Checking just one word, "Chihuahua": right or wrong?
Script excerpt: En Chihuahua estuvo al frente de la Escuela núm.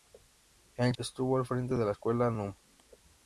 wrong